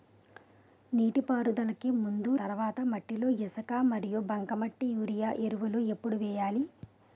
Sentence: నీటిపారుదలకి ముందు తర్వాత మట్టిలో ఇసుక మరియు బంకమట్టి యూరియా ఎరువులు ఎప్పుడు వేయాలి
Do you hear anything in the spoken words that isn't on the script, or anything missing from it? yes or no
no